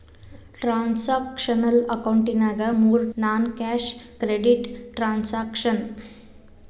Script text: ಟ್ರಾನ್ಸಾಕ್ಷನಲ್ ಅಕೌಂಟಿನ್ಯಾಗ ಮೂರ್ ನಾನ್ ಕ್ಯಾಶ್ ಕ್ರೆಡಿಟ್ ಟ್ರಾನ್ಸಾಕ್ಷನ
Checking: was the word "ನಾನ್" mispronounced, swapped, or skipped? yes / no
no